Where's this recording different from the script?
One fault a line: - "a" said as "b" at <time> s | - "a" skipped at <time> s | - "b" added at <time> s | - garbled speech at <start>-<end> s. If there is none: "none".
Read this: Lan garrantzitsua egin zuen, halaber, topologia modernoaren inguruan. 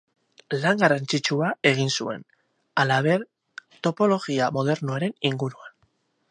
none